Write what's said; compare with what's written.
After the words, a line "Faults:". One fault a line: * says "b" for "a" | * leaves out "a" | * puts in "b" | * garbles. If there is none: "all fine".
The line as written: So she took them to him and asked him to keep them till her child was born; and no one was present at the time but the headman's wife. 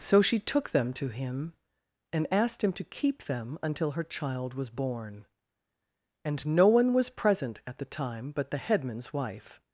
So she took them to him and asked him to keep them until her child was born; and no one was present at the time but the headman's wife.
Faults:
* says "until" for "till"